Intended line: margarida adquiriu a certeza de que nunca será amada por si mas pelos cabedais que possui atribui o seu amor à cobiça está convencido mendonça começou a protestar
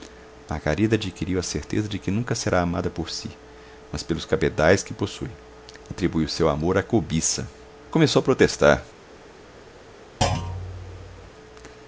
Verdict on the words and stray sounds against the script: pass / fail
fail